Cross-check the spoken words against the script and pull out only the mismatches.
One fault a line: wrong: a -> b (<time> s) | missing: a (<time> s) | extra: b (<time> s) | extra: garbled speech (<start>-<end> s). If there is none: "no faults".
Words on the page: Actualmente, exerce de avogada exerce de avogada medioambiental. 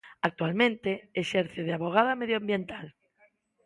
missing: exerce de avogada (2.1 s)